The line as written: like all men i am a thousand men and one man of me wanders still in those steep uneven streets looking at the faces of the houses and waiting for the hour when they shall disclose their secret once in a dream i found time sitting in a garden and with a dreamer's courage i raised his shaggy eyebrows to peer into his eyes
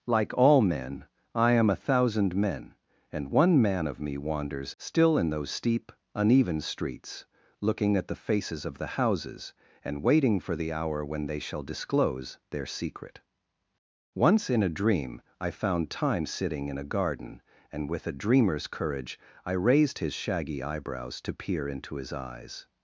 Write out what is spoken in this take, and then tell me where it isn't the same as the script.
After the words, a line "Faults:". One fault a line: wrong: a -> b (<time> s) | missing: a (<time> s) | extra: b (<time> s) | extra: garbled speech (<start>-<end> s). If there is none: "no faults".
like all men i am a thousand men and one man of me wanders still in those steep uneven streets looking at the faces of the houses and waiting for the hour when they shall disclose their secret once in a dream i found time sitting in a garden and with a dreamer's courage i raised his shaggy eyebrows to peer into his eyes
Faults:
no faults